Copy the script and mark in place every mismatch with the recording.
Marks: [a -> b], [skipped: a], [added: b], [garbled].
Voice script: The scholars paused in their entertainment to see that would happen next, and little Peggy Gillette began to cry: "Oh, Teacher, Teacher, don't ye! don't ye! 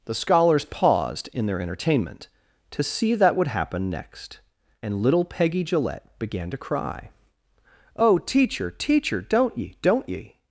The scholars paused in their entertainment to see that would happen next, and little Peggy Gillette began to cry: "Oh, Teacher, Teacher, don't ye! don't ye!